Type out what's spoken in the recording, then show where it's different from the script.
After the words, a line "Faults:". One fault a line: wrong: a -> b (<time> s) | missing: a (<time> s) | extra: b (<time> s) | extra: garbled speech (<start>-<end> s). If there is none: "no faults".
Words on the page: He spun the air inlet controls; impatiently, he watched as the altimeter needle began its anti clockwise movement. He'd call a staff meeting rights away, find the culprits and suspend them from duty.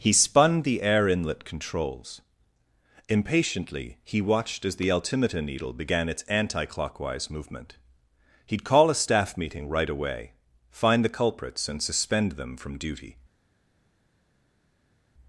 He spun the air inlet controls; impatiently, he watched as the altimeter needle began its anti clockwise movement. He'd call a staff meeting right away, find the culprits and suspend them from duty.
Faults:
wrong: rights -> right (9.7 s)